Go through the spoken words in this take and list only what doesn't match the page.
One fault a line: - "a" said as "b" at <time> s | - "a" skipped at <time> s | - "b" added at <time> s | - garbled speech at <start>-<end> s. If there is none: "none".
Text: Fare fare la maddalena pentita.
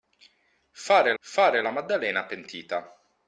none